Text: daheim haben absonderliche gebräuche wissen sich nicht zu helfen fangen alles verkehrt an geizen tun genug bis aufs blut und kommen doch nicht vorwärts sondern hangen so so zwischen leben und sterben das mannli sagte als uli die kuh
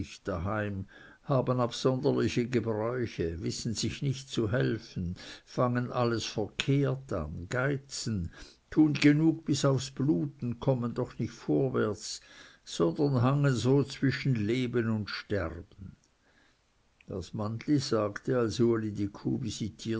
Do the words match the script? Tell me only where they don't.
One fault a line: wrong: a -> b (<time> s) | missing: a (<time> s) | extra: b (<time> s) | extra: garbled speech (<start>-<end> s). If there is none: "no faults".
missing: so (13.8 s)